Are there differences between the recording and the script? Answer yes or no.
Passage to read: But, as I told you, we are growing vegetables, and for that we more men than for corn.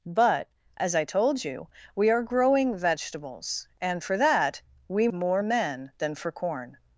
no